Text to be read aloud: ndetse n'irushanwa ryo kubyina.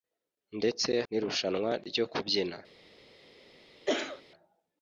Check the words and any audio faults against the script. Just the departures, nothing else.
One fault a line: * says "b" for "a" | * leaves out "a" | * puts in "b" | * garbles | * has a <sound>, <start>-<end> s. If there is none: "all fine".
* has a cough, 3.9-4.2 s